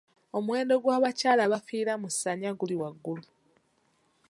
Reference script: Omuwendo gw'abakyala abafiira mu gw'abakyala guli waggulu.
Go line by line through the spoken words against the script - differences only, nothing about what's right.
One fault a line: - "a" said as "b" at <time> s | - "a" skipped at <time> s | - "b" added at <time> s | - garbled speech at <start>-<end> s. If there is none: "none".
- "gw'abakyala" said as "ssanya" at 2.1 s